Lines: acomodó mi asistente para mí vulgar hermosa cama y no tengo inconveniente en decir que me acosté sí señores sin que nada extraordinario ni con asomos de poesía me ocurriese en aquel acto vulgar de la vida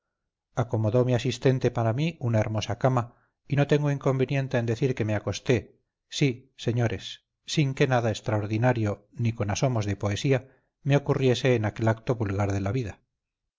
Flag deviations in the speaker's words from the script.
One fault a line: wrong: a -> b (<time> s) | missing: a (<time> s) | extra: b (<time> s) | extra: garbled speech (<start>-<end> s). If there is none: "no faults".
wrong: vulgar -> una (2.2 s)